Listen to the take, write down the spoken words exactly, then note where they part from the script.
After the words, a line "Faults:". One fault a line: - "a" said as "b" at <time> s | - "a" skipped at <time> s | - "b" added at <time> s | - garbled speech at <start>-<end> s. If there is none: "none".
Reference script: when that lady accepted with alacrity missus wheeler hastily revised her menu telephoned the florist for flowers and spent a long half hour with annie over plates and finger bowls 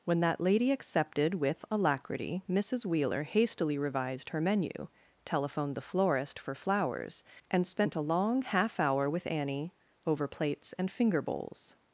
when that lady accepted with alacrity missus wheeler hastily revised her menu telephoned the florist for flowers and spent a long half hour with annie over plates and finger bowls
Faults:
none